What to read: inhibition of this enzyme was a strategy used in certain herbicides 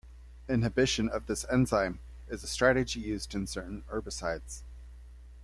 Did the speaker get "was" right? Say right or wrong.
wrong